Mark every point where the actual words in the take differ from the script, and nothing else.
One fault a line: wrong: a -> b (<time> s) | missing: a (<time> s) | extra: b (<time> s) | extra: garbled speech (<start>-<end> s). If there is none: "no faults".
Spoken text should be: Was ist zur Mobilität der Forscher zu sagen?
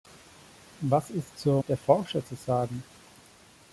missing: Mobilität (1.6 s)